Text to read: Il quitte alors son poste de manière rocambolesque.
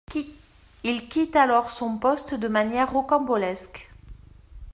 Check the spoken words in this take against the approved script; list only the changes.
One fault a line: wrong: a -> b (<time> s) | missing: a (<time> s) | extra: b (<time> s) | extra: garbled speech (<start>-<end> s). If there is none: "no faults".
no faults